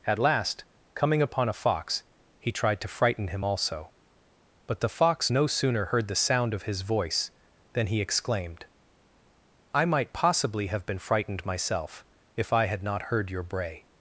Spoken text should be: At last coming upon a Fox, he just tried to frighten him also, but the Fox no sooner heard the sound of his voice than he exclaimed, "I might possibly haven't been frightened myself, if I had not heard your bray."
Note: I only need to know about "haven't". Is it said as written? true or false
false